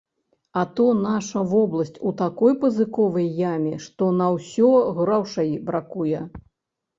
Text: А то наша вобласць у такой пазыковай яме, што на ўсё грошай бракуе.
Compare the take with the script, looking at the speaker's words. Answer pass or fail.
pass